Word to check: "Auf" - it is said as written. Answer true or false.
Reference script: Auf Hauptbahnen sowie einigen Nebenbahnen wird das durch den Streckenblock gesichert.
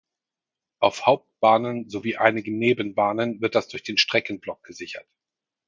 true